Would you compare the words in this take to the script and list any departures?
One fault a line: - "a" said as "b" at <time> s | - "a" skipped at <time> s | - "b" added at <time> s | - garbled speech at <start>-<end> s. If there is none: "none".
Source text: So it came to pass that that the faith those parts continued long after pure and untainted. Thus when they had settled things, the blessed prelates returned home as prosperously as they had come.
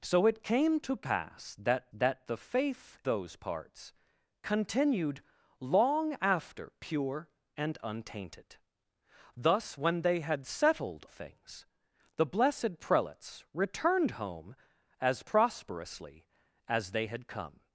none